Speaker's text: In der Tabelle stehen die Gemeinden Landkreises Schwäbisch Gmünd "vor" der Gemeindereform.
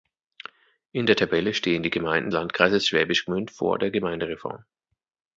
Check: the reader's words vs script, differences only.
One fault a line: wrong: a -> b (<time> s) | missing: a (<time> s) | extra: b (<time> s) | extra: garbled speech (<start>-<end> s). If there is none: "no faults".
no faults